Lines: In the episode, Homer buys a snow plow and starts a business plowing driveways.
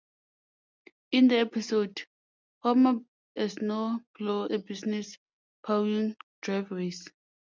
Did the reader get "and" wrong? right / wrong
wrong